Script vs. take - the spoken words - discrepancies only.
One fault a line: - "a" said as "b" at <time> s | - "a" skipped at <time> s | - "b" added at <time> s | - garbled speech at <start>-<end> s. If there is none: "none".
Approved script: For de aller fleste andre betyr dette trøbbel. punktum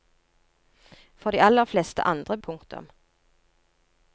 - "betyr dette trøbbel" skipped at 2.4 s